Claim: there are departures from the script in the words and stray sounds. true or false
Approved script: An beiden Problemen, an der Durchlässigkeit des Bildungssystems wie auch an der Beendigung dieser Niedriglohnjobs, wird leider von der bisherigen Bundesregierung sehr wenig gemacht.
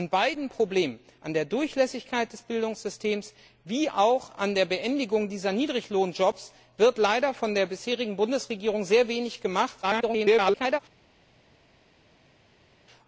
true